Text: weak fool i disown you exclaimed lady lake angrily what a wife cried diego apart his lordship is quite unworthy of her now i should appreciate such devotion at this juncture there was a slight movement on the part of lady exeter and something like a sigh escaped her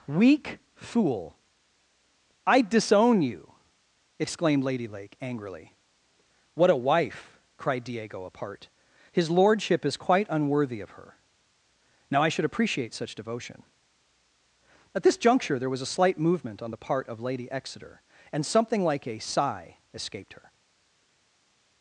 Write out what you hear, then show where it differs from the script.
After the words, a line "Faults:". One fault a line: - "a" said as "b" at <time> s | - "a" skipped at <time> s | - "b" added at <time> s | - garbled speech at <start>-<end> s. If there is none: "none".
weak fool i disown you exclaimed lady lake angrily what a wife cried diego apart his lordship is quite unworthy of her now i should appreciate such devotion at this juncture there was a slight movement on the part of lady exeter and something like a sigh escaped her
Faults:
none